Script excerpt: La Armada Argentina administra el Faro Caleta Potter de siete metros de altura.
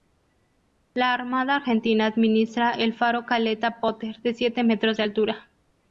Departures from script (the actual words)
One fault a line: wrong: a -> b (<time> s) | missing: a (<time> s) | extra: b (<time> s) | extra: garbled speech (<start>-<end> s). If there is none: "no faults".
no faults